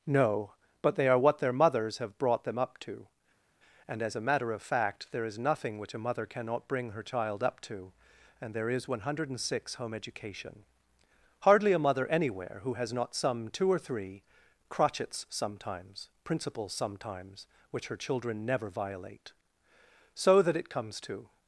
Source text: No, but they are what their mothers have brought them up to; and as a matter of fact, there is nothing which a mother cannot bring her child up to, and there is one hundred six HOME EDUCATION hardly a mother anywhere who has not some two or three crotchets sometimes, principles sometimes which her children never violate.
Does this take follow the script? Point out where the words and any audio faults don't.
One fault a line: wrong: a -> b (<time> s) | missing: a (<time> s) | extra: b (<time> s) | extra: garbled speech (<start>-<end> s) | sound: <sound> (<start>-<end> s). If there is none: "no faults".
extra: So that it comes to (20.1 s)